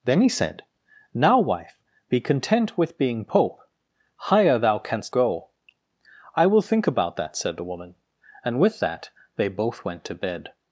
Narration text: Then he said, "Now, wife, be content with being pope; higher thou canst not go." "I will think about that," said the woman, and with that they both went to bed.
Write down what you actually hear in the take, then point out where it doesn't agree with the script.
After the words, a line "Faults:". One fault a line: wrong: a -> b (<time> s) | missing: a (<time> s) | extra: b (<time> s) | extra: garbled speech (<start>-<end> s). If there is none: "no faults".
Then he said, "Now, wife, be content with being pope; higher thou canst go." "I will think about that," said the woman, and with that they both went to bed.
Faults:
missing: not (5.1 s)